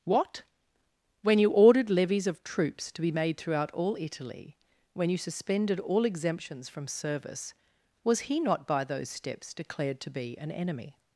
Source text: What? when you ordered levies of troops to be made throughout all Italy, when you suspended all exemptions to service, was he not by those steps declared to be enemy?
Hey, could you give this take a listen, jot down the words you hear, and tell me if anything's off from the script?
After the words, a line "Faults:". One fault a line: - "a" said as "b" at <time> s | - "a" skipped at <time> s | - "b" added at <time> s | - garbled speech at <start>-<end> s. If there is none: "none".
What? when you ordered levies of troops to be made throughout all Italy, when you suspended all exemptions from service, was he not by those steps declared to be an enemy?
Faults:
- "to" said as "from" at 6.7 s
- "an" added at 10.4 s